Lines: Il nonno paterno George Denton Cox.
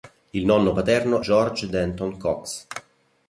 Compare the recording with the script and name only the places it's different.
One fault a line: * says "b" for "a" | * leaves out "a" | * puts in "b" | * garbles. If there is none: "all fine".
all fine